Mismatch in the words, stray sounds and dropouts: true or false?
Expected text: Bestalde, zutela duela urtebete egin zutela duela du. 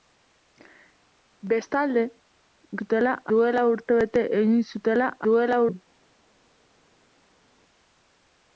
false